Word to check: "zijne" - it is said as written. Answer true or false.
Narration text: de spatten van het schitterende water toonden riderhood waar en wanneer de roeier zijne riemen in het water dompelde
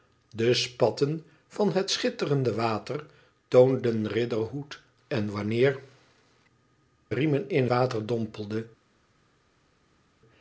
false